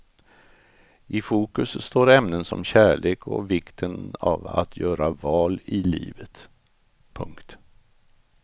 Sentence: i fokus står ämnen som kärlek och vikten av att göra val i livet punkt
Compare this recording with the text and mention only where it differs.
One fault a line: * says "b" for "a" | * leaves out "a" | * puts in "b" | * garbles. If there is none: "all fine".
all fine